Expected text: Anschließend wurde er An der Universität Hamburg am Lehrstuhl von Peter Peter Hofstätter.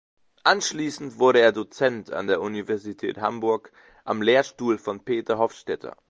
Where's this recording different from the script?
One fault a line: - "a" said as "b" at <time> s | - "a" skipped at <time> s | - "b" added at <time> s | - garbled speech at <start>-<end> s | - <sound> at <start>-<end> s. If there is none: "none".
- "Dozent" added at 1.5 s
- "Peter" skipped at 5.4 s